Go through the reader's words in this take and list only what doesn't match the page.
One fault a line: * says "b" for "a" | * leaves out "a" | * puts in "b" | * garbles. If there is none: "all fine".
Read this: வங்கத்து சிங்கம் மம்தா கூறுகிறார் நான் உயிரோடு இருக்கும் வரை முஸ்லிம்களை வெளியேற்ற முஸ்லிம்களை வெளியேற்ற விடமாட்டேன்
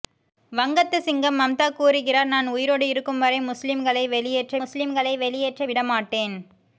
all fine